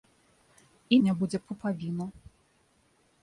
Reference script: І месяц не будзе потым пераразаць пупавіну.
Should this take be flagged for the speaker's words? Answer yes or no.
yes